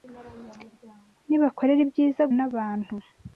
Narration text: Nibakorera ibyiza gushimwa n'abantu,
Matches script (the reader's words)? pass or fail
fail